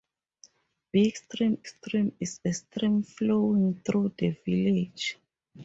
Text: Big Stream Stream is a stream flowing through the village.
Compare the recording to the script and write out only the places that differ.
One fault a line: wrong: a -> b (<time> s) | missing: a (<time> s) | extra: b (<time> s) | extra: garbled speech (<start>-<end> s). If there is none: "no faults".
no faults